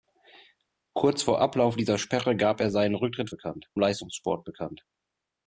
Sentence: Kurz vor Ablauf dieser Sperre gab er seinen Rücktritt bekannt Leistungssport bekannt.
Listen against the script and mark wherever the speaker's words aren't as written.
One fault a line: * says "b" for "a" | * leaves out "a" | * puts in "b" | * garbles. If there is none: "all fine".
all fine